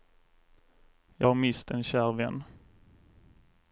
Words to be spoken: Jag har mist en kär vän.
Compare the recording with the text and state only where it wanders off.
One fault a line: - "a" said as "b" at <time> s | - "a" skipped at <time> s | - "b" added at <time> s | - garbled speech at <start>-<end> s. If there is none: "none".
none